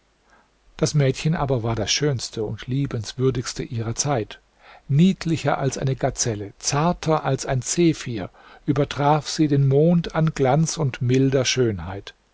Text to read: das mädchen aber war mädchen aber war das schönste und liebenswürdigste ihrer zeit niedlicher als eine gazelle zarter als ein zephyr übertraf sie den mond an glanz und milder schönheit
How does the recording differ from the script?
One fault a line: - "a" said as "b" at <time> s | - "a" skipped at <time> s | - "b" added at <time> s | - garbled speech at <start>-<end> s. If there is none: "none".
- "mädchen aber war" skipped at 1.8 s